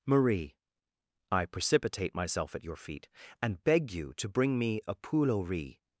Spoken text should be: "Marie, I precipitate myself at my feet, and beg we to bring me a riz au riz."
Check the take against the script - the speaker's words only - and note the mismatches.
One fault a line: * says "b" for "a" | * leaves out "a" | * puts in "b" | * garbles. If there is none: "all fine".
* says "your" for "my"
* says "you" for "we"
* says "poule" for "riz"